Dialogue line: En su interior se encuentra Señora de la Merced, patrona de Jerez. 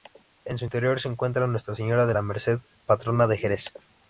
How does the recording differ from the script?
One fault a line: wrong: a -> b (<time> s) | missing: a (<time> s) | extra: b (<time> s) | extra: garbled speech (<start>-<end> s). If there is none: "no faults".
extra: Nuestra (1.5 s)